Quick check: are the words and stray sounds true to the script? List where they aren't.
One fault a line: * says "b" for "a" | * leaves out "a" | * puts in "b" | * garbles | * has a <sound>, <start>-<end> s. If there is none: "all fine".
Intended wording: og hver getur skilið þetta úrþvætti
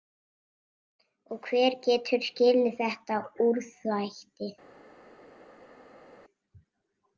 all fine